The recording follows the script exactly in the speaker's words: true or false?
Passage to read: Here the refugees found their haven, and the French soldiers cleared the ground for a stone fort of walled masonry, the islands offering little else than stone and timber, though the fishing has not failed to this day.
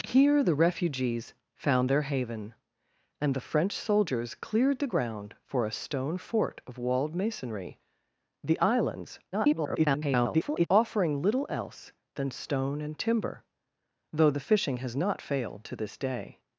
false